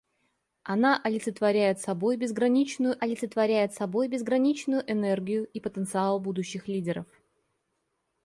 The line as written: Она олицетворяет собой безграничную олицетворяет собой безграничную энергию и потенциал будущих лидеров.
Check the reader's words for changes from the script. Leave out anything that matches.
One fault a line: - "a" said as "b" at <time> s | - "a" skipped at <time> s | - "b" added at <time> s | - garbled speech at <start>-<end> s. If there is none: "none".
none